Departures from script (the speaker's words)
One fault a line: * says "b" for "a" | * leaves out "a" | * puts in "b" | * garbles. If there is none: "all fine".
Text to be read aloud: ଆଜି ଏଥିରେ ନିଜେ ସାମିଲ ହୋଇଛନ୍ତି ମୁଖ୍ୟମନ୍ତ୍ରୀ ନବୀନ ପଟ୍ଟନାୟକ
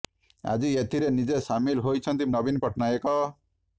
* leaves out "ମୁଖ୍ୟମନ୍ତ୍ରୀ"